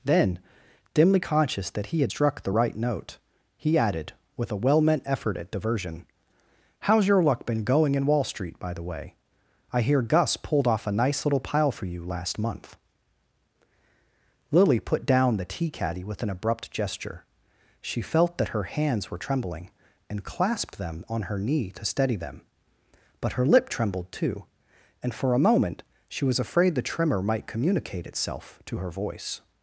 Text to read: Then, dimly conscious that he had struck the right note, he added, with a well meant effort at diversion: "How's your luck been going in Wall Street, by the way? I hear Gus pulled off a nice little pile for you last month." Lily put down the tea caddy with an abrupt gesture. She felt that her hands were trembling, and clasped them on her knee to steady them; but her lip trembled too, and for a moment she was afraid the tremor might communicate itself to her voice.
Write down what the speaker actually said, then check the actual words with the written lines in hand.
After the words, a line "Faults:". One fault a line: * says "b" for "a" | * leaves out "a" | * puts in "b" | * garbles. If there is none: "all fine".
Then, dimly conscious that he had struck the right note, he added, with a well meant effort at diversion: "How's your luck been going in Wall Street, by the way? I hear Gus pulled off a nice little pile for you last month." Lily put down the tea caddy with an abrupt gesture. She felt that her hands were trembling, and clasped them on her knee to steady them; but her lip trembled too, and for a moment she was afraid the tremor might communicate itself to her voice.
Faults:
all fine